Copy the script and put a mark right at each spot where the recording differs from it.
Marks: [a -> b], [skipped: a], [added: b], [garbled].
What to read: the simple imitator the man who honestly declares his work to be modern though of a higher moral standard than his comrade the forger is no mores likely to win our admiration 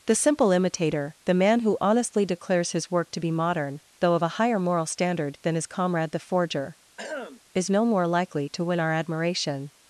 the simple imitator the man who honestly declares his work to be modern though of a higher moral standard than his comrade the forger is no [mores -> more] likely to win our admiration